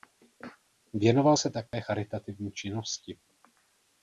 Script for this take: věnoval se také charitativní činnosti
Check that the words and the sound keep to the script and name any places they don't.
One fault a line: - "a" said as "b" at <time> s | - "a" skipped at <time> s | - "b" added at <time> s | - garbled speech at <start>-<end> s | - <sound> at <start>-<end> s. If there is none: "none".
- dropout at 1.7-1.7 s